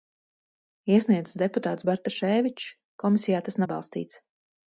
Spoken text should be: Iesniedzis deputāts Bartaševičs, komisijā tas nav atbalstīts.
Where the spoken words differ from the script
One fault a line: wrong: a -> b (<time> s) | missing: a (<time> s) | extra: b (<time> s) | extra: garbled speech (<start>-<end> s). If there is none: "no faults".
missing: nav (3.6 s)